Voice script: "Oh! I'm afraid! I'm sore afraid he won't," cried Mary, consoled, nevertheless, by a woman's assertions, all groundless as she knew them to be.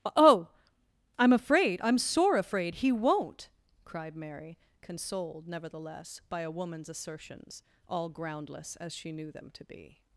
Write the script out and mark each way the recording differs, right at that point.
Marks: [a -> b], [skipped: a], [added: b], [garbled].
"Oh! I'm afraid! I'm sore afraid he won't," cried Mary, consoled, nevertheless, by a woman's assertions, all groundless as she knew them to be.